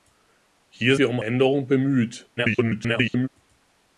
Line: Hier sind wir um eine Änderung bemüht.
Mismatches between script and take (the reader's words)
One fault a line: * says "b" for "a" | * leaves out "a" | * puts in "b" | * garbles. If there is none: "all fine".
* leaves out "sind"
* leaves out "eine"
* garbles